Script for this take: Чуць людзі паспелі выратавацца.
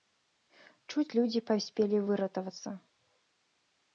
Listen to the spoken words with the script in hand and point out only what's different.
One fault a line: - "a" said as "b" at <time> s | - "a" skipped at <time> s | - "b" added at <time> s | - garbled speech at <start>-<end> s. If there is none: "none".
none